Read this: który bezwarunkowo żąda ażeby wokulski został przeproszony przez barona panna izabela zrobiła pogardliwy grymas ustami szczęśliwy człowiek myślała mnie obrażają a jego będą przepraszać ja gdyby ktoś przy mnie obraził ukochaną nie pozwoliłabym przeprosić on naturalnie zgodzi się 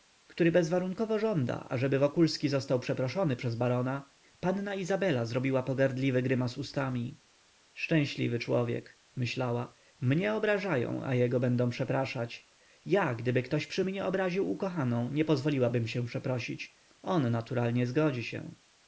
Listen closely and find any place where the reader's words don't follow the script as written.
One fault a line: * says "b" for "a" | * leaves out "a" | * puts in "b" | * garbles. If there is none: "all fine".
* puts in "się"